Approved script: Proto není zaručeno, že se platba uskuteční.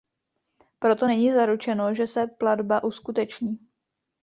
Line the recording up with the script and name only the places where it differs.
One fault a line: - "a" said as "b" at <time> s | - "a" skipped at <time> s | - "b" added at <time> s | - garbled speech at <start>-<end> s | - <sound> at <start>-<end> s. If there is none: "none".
none